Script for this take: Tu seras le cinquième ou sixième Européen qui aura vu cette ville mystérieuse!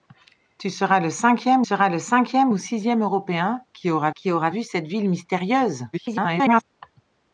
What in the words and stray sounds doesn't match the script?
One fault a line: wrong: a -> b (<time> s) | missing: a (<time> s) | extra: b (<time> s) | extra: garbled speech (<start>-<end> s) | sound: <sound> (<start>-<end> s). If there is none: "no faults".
extra: seras le cinquième (1.6 s)
extra: qui aura (4.1 s)
extra: garbled speech (5.9-6.6 s)